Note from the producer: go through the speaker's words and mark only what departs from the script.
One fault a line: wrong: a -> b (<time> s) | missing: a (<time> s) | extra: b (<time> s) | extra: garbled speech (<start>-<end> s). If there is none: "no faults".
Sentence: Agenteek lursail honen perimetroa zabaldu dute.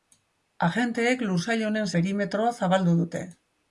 no faults